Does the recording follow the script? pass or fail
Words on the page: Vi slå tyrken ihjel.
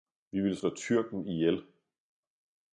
fail